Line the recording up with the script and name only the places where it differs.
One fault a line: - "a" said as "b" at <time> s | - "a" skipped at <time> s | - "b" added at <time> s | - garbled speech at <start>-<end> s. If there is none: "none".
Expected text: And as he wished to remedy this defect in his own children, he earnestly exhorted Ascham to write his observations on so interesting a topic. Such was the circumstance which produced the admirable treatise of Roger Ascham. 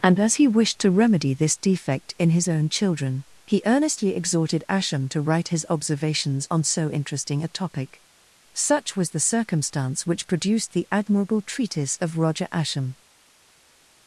none